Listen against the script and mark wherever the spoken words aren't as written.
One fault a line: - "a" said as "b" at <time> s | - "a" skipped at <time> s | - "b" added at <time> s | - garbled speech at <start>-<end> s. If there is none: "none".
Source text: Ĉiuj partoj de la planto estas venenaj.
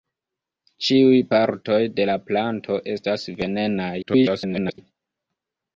- garbled speech at 4.0-4.8 s